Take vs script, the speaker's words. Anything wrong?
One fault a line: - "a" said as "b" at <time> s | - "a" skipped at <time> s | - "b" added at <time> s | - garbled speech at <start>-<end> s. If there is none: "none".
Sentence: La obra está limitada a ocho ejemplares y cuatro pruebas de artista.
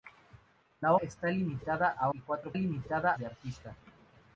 - "obra" skipped at 0.9 s
- "ocho ejemplares" skipped at 2.1 s
- "pruebas" said as "limitada" at 2.5 s